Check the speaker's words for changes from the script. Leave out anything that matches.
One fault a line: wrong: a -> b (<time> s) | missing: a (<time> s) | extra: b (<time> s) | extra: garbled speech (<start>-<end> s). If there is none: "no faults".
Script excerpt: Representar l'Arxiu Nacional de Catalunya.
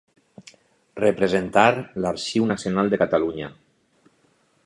no faults